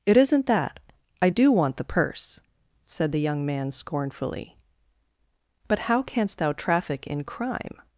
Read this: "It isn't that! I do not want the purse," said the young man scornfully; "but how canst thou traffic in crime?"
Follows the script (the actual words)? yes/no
no